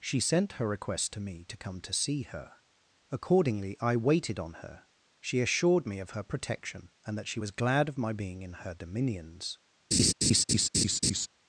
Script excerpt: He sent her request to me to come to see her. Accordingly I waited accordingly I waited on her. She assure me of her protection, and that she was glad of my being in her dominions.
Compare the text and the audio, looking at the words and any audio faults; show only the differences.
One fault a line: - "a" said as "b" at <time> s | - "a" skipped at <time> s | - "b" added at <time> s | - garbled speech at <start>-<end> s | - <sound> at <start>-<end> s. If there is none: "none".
- "He" said as "She" at 0.0 s
- "accordingly I waited" skipped at 4.4 s
- "assure" said as "assured" at 5.4 s
- laugh at 9.9-11.3 s